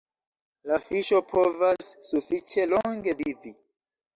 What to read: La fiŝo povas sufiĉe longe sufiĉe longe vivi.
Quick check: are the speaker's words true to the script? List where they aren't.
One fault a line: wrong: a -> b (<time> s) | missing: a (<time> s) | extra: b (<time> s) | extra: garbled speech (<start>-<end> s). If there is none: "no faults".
missing: sufiĉe longe (3.2 s)